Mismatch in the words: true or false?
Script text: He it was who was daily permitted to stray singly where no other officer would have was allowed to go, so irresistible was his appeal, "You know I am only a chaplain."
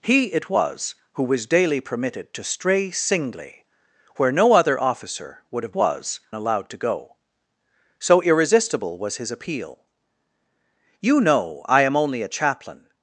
false